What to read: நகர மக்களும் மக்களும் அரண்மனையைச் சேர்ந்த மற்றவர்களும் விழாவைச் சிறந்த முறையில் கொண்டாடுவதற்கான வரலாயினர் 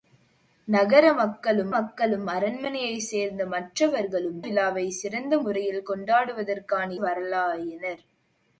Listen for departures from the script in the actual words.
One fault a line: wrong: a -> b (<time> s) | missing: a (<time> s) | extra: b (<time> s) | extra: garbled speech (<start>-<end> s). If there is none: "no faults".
no faults